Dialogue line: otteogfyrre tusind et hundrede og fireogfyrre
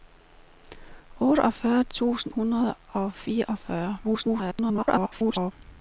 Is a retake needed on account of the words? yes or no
yes